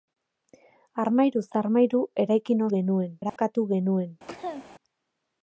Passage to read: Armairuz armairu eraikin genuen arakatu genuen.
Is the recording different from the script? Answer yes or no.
no